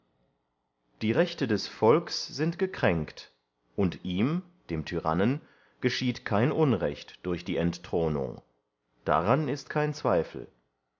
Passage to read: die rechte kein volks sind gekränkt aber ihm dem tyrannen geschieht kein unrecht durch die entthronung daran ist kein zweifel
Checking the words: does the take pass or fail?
fail